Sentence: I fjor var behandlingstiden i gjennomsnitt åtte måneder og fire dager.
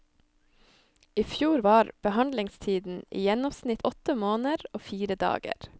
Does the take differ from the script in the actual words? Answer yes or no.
no